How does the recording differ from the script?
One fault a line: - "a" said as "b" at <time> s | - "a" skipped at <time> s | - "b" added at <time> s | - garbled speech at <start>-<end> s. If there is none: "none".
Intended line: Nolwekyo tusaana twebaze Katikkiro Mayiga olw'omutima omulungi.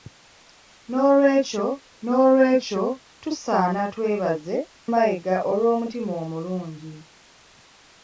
- "nolwekyo" added at 2.0 s
- "Katikkiro" skipped at 4.6 s